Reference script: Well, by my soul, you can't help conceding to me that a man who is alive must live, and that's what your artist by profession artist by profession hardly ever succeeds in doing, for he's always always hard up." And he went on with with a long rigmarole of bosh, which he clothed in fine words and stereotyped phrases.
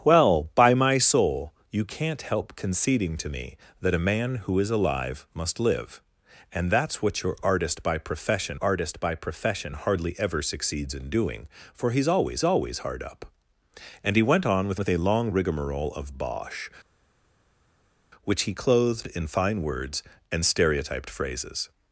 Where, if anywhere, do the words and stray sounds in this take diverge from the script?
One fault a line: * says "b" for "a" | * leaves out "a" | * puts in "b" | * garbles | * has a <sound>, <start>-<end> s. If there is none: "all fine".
all fine